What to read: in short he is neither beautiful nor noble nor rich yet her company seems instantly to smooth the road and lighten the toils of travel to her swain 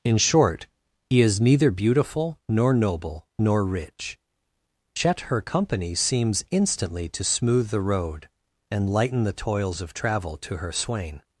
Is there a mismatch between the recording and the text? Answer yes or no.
no